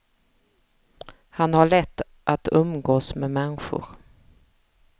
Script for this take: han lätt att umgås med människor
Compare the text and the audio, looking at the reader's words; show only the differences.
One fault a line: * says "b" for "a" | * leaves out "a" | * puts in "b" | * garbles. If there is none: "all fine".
* puts in "har"